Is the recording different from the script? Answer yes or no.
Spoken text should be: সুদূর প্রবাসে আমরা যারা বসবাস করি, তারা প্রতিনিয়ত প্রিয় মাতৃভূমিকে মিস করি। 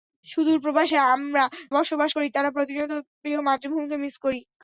yes